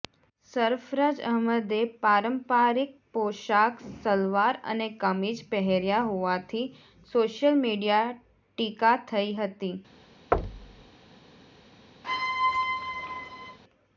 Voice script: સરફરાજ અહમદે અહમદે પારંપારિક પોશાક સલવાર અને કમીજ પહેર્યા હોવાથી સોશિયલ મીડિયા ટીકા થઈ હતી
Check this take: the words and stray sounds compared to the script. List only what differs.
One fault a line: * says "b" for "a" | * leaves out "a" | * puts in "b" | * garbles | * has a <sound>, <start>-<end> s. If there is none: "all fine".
* leaves out "અહમદે"
* has a thud, 10.3-10.9 s
* has a squeak, 12.0-13.6 s